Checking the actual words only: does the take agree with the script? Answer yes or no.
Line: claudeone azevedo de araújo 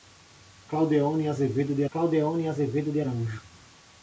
no